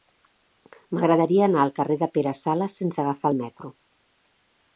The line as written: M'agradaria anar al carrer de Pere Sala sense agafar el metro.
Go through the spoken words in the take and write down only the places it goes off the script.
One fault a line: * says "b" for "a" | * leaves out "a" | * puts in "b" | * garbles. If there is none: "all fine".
all fine